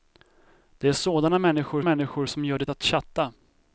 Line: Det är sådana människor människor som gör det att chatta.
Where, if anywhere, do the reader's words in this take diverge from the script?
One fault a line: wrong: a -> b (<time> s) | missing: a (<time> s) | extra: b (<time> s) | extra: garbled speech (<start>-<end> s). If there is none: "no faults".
no faults